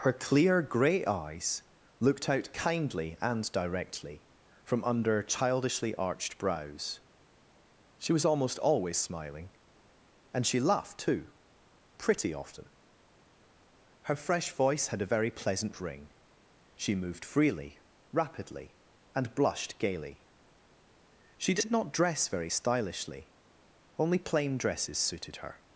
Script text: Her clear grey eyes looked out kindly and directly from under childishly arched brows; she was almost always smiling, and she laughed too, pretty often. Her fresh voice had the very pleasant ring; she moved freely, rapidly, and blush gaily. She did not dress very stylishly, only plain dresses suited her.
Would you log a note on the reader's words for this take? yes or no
yes